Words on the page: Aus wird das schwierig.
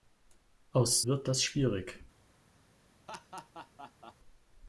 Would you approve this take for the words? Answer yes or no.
yes